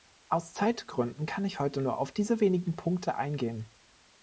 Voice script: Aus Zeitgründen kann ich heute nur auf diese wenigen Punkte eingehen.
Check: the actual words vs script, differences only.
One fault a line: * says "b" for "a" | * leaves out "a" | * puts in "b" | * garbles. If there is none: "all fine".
all fine